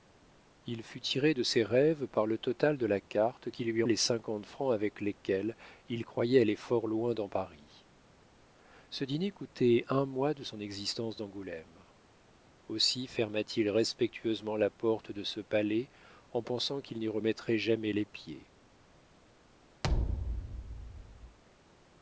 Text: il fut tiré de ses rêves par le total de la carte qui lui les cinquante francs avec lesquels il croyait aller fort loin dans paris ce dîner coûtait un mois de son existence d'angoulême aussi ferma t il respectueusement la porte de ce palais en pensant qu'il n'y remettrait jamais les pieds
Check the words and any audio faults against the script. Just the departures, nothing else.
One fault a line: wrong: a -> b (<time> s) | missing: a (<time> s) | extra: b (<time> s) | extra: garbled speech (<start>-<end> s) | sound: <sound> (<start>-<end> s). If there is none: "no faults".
sound: thud (19.8-21.4 s)